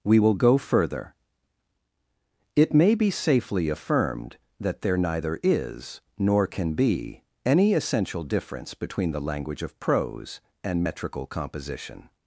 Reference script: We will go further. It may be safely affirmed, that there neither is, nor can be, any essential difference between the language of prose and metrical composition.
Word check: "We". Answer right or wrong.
right